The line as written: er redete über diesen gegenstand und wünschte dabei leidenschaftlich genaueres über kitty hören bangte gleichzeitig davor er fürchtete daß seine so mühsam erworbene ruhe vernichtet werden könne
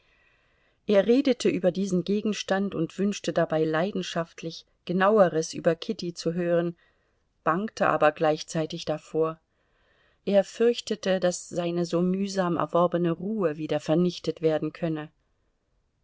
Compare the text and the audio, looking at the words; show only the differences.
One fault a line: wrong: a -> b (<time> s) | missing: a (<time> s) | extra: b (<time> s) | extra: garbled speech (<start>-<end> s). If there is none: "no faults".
extra: zu (6.1 s)
extra: aber (7.9 s)
extra: wieder (13.5 s)